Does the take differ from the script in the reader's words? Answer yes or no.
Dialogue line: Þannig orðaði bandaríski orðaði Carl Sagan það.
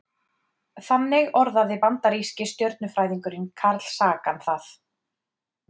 yes